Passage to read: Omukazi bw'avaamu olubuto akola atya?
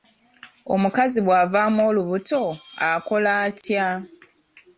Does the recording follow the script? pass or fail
pass